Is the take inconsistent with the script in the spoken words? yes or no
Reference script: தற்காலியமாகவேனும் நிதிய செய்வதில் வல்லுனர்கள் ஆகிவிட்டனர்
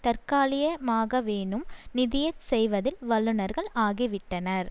no